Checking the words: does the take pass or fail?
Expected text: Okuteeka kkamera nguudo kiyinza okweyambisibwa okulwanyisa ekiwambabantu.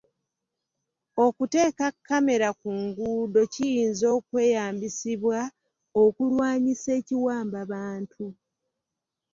fail